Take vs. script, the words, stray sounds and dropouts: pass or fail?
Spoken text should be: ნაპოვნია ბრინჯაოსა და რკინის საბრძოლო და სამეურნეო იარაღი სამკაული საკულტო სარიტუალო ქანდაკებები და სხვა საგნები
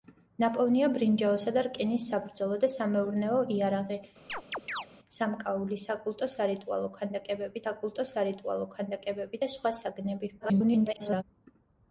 fail